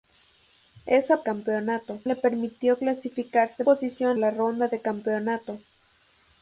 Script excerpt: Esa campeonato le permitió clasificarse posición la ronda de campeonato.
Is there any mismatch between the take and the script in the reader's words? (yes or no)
no